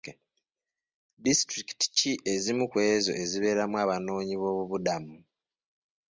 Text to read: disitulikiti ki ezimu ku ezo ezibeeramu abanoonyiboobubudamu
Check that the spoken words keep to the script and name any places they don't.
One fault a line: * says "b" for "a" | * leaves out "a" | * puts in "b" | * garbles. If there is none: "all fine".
all fine